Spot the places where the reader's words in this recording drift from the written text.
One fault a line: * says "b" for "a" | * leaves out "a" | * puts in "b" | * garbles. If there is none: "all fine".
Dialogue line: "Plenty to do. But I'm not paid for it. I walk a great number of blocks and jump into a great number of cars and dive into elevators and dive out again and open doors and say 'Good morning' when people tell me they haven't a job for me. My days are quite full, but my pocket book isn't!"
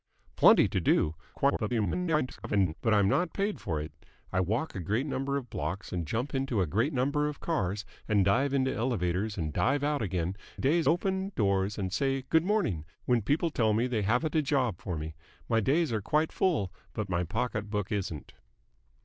* garbles
* says "days" for "and"